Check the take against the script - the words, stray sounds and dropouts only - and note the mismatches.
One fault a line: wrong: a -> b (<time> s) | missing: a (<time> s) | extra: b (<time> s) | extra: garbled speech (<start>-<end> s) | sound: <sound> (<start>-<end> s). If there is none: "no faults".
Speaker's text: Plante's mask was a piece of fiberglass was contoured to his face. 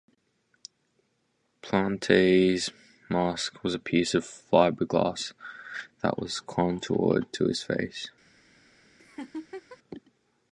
extra: that (6.0 s)
sound: laugh (9.0-9.8 s)